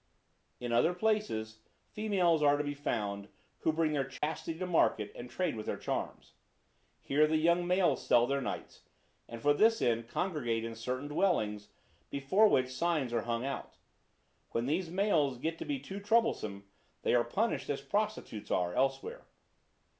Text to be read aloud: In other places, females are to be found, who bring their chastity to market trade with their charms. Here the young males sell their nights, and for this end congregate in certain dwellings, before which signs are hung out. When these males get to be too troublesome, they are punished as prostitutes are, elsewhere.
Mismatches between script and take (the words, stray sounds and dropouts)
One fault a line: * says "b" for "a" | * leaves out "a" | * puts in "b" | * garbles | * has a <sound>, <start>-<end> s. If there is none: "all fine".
* has a dropout, 4.2-4.2 s
* puts in "and"